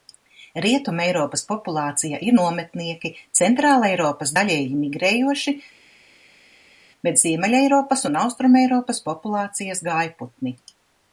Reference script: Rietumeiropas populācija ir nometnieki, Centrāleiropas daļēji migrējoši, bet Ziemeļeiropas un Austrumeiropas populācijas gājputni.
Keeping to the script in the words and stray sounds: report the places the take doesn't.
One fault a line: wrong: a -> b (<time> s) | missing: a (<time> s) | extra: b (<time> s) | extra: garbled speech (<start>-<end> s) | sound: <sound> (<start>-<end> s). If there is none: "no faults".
no faults